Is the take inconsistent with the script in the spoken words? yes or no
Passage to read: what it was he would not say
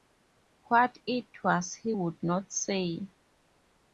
no